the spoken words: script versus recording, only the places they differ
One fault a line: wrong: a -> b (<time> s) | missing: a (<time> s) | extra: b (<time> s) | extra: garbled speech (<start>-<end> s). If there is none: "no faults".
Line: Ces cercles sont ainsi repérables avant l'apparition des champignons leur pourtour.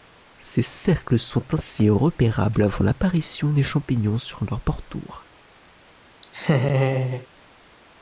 extra: sur (4.2 s)